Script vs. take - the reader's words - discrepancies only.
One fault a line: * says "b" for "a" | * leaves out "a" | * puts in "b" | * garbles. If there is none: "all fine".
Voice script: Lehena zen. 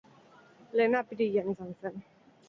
* puts in "apirilean izan"